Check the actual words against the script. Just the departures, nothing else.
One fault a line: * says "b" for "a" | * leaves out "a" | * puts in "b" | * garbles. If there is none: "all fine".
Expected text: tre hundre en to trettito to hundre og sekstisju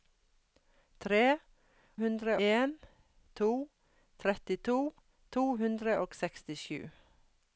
all fine